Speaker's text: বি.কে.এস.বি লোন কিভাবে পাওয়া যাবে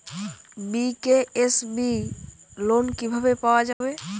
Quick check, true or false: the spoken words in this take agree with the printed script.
true